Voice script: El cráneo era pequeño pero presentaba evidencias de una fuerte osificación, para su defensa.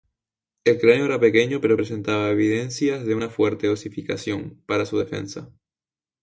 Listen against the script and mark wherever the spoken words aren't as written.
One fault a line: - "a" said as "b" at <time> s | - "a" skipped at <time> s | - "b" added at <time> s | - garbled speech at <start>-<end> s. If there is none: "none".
none